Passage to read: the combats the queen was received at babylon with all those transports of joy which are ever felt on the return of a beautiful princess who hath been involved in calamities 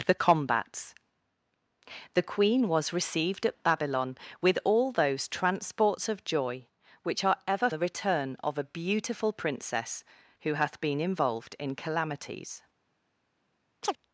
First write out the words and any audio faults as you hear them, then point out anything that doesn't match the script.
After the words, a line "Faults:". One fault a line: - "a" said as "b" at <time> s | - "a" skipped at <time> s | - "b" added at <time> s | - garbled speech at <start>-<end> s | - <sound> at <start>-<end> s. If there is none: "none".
the combats the queen was received at babylon with all those transports of joy which are ever the return of a beautiful princess who hath been involved in calamities
Faults:
- "felt on" skipped at 7.7 s
- chirp at 13.8-14.0 s